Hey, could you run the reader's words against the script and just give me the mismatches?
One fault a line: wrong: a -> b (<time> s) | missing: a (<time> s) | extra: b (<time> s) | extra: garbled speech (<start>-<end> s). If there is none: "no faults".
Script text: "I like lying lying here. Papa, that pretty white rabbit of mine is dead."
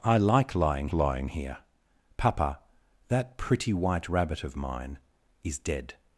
no faults